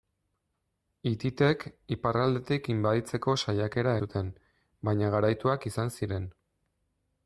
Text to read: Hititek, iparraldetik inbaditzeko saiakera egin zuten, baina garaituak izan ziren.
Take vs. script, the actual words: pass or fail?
fail